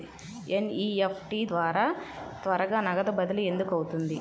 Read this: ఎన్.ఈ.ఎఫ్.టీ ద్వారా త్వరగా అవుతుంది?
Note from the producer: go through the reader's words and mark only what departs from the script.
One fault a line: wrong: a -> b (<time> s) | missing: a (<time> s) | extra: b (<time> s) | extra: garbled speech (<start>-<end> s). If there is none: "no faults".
extra: నగదు బదిలీ ఎందుకు (2.8 s)